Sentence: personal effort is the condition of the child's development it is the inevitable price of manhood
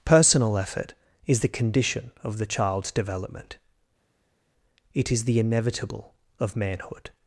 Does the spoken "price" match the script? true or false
false